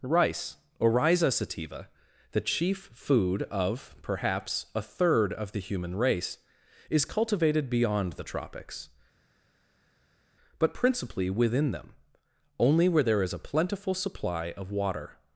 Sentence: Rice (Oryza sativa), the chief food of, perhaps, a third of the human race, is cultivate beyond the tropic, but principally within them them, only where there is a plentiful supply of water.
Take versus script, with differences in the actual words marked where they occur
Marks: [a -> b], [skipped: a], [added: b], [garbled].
Rice (Oryza sativa), the chief food of, perhaps, a third of the human race, is [cultivate -> cultivated] beyond the [tropic, -> tropics] but principally within them [skipped: them,] only where there is a plentiful supply of water.